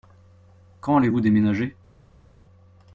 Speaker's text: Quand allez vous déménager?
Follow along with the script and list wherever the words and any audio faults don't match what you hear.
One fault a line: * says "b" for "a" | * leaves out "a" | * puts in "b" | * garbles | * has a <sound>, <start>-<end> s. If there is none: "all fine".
all fine